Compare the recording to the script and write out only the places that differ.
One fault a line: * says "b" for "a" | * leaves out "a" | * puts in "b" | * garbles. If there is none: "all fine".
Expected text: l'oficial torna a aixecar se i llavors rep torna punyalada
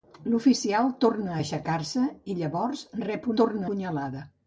all fine